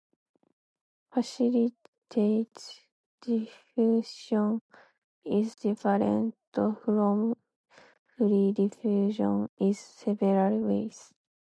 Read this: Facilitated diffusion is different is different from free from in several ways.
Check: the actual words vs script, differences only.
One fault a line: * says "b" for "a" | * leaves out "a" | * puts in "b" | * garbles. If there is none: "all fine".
* leaves out "is different"
* says "diffusion" for "from"